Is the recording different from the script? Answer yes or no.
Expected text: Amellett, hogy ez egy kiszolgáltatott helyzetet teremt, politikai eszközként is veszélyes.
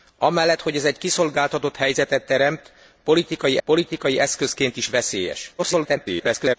yes